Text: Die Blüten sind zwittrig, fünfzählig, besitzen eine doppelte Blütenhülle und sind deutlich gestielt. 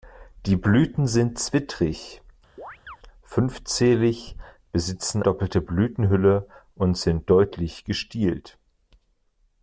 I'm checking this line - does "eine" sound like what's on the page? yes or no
no